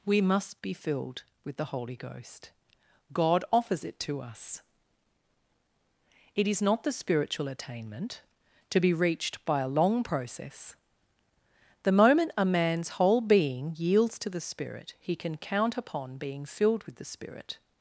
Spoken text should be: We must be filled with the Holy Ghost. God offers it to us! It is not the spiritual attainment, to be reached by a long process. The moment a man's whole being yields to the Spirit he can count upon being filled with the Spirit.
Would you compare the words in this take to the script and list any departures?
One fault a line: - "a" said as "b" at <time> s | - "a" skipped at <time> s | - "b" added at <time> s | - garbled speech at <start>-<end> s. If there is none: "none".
none